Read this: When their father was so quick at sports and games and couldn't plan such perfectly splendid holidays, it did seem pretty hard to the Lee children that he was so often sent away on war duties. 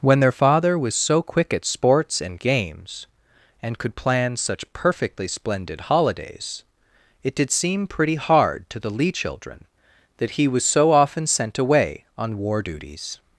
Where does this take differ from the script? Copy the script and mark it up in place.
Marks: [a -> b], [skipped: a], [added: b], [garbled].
When their father was so quick at sports and games and [couldn't -> could] plan such perfectly splendid holidays, it did seem pretty hard to the Lee children that he was so often sent away on war duties.